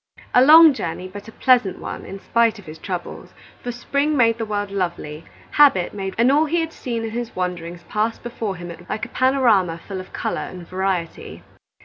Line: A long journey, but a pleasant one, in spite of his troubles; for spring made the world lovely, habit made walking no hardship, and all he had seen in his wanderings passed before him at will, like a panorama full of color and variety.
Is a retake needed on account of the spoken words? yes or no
yes